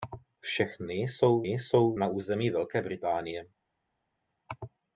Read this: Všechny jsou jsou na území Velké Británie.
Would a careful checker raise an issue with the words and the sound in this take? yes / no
no